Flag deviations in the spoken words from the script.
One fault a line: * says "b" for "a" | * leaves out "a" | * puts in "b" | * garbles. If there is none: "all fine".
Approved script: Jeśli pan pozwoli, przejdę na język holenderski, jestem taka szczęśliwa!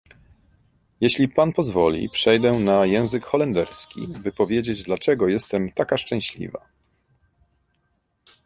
* puts in "by powiedzieć dlaczego"